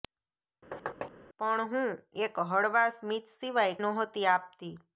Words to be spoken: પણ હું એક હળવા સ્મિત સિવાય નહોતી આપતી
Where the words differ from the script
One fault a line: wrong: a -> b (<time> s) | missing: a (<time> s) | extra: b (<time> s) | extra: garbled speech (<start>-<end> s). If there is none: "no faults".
no faults